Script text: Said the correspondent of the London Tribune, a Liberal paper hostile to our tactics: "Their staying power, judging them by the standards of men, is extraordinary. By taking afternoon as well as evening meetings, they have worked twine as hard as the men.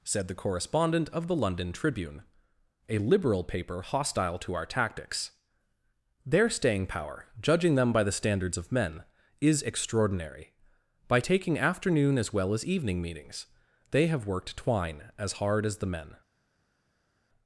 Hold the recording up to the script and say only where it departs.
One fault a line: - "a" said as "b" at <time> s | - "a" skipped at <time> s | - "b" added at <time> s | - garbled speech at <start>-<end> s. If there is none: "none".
none